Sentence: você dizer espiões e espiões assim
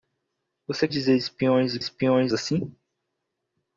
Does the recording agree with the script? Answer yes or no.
yes